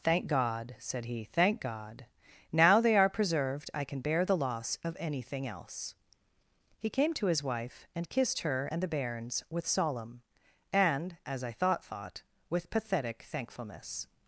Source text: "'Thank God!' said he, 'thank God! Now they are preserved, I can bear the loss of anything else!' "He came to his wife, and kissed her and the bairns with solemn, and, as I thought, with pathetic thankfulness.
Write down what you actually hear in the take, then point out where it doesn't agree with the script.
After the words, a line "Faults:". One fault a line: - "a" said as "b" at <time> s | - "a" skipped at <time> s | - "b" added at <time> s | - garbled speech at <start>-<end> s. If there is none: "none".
"'Thank God!' said he, 'thank God! Now they are preserved, I can bear the loss of anything else!' "He came to his wife, and kissed her and the bairns with solemn, and, as I thought thought, with pathetic thankfulness.
Faults:
- "thought" added at 11.8 s